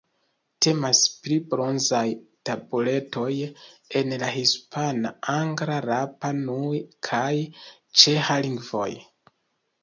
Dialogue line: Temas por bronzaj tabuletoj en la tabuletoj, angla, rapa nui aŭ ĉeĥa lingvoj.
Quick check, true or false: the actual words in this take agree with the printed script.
false